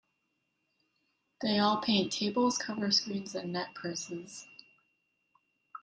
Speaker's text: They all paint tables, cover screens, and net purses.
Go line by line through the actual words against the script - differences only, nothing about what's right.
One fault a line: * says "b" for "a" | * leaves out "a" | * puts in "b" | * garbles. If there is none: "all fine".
all fine